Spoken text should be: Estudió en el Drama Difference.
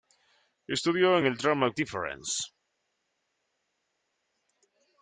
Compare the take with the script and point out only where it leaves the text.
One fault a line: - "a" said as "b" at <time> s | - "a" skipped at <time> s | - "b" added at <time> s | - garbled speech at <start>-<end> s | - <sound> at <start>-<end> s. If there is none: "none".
none